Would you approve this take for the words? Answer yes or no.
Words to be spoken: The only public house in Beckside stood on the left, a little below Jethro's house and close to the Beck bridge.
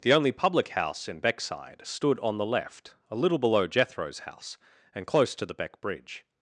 yes